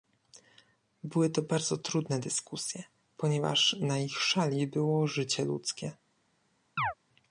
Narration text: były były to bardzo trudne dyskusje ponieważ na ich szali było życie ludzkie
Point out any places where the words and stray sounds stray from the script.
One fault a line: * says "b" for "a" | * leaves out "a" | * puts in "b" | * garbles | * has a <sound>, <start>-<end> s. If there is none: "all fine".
* leaves out "były"
* has a chirp, 6.8-6.9 s